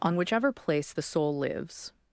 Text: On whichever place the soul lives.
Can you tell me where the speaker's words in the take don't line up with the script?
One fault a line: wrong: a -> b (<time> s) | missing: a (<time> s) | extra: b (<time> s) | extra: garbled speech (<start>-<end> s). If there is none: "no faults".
no faults